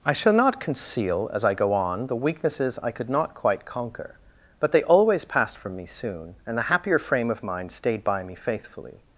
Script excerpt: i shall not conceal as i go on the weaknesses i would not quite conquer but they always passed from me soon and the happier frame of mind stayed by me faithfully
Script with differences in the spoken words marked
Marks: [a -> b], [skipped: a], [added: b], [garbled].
i shall not conceal as i go on the weaknesses i [would -> could] not quite conquer but they always passed from me soon and the happier frame of mind stayed by me faithfully